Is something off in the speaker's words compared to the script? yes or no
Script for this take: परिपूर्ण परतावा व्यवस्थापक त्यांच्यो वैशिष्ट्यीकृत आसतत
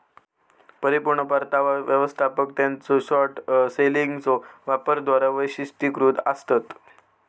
yes